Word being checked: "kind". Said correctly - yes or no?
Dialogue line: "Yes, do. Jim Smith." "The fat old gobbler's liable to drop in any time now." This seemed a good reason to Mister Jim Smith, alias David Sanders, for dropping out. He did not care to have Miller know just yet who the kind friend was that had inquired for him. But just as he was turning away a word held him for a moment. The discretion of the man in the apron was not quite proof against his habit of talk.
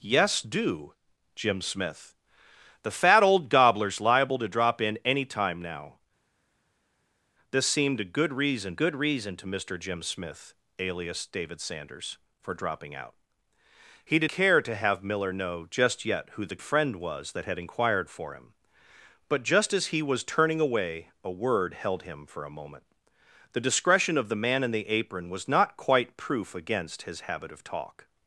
no